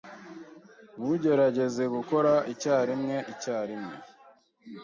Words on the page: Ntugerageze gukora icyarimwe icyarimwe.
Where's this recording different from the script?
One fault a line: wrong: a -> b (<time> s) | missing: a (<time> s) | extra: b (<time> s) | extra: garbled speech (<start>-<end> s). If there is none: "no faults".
no faults